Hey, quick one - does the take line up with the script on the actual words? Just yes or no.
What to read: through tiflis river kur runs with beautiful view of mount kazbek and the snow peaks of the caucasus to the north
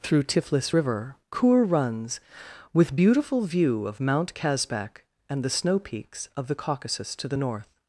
yes